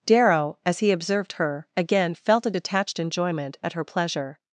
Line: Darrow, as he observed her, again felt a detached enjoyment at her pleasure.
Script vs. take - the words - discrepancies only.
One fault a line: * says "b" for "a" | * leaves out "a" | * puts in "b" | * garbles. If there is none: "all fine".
all fine